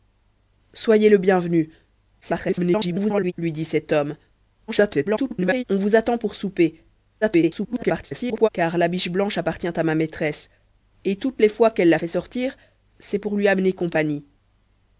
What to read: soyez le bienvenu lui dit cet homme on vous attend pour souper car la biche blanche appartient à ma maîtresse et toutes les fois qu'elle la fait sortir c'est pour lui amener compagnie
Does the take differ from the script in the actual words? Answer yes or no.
yes